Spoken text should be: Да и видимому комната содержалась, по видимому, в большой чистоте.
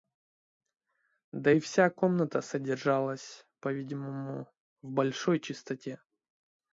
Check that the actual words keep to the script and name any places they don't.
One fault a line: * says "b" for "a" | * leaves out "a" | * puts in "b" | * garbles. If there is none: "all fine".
* says "вся" for "видимому"